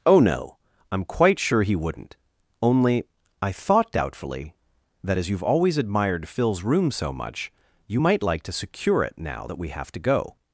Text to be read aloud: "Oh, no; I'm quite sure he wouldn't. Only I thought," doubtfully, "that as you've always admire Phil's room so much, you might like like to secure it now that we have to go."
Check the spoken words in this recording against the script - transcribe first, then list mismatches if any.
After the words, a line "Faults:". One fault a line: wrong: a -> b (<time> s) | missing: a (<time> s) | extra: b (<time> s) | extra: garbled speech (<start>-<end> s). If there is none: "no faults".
"Oh, no; I'm quite sure he wouldn't. Only I thought," doubtfully, "that as you've always admired Phil's room so much, you might like to secure it now that we have to go."
Faults:
wrong: admire -> admired (5.8 s)
missing: like (8.4 s)